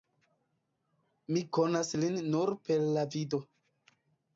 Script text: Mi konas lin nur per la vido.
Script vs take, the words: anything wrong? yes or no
no